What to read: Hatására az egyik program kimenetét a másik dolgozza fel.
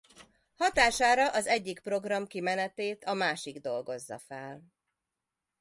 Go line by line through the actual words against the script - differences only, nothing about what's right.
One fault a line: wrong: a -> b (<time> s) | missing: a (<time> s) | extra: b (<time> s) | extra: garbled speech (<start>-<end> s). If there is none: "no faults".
no faults